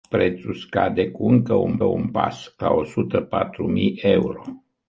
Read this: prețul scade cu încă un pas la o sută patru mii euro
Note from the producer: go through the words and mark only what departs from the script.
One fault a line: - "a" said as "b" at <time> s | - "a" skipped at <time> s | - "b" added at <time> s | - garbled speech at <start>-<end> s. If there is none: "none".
- "un" added at 1.8 s